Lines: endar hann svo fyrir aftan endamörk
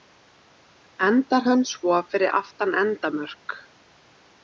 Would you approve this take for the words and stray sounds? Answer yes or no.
yes